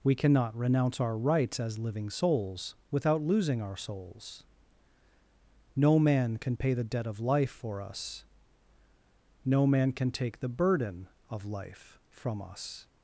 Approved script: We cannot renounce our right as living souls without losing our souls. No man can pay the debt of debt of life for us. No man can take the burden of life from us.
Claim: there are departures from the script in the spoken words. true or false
true